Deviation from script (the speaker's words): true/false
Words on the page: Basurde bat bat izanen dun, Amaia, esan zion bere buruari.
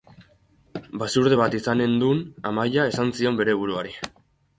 true